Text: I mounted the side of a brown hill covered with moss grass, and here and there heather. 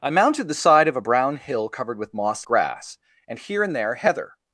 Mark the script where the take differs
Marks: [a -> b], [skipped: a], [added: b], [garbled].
I mounted the side of a brown hill covered with moss grass, and here and there heather.